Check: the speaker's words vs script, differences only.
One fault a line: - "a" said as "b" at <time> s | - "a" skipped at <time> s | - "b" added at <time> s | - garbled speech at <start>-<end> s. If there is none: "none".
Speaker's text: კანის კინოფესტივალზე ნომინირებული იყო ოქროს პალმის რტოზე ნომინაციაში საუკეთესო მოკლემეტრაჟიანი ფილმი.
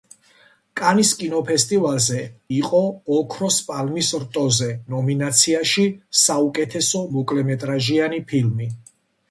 - "ნომინირებული" skipped at 2.2 s